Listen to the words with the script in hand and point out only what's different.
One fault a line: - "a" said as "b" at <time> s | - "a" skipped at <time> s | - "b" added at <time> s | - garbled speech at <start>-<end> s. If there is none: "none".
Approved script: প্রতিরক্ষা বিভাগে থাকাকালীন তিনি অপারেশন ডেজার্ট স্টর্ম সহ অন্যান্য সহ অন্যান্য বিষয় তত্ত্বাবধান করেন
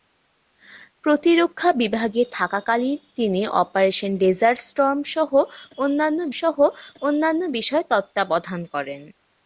none